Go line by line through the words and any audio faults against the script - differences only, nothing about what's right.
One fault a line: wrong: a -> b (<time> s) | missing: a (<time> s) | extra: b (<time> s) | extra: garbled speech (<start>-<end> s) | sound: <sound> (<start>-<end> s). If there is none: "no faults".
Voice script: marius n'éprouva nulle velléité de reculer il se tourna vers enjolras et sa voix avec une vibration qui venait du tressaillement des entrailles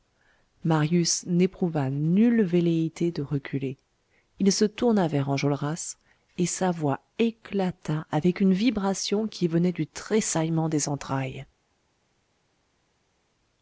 extra: éclata (7.2 s)